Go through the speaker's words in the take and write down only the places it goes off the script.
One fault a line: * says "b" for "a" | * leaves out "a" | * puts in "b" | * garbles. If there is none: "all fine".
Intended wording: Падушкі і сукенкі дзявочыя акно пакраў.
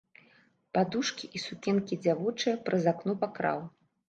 * puts in "праз"